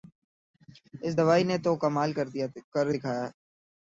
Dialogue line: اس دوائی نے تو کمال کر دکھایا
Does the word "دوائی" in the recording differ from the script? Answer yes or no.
no